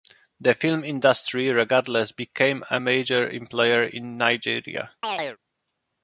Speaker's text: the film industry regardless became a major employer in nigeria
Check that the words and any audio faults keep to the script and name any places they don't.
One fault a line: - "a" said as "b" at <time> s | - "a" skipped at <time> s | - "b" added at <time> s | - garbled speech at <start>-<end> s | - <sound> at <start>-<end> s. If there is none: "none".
- chirp at 5.0-5.4 s